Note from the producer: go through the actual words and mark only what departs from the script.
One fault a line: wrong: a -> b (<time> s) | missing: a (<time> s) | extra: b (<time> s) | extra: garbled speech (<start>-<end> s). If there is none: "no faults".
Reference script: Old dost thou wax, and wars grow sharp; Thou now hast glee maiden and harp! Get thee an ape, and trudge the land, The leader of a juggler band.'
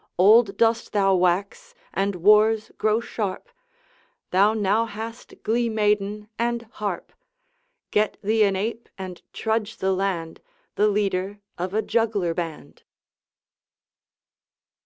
no faults